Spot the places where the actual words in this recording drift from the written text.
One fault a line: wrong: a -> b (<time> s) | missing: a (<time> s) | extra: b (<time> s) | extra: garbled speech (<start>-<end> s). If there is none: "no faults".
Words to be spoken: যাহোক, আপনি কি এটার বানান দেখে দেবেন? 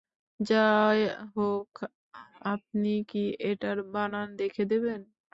no faults